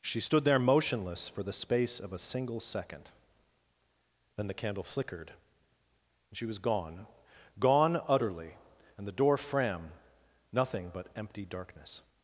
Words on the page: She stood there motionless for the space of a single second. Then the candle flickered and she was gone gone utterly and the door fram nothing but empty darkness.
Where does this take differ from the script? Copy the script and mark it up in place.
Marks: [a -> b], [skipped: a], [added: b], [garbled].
She stood there motionless for the space of a single second. Then the candle flickered and she was gone gone utterly and the door fram nothing but empty darkness.